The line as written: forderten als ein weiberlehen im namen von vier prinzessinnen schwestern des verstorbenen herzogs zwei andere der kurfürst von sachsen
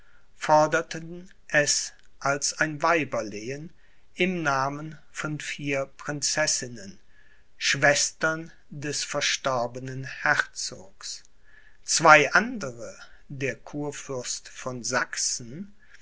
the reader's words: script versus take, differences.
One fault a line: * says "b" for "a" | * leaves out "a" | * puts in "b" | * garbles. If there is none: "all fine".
* puts in "es"